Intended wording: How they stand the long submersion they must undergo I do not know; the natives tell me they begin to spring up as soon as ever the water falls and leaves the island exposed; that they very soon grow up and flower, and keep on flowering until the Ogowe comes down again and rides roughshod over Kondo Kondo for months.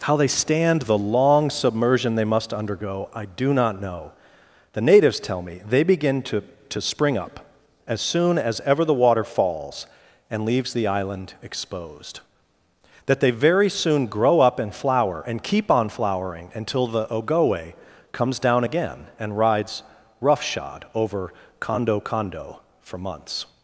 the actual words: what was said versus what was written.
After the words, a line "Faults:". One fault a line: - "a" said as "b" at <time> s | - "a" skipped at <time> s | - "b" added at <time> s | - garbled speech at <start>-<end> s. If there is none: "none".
How they stand the long submersion they must undergo I do not know; the natives tell me they begin to to spring up as soon as ever the water falls and leaves the island exposed; that they very soon grow up and flower, and keep on flowering until the Ogowe comes down again and rides roughshod over Kondo Kondo for months.
Faults:
- "to" added at 6.7 s